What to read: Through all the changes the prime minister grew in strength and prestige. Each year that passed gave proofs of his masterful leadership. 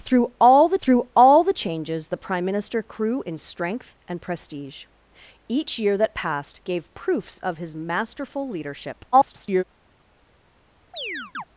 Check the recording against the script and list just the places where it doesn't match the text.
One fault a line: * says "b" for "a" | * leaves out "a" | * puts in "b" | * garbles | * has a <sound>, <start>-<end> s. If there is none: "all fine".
* puts in "through all the"
* garbles
* has a chirp, 10.9-11.4 s